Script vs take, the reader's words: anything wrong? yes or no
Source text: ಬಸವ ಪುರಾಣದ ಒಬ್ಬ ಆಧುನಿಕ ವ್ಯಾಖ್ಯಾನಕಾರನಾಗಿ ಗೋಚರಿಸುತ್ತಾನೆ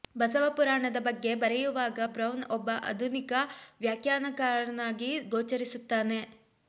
yes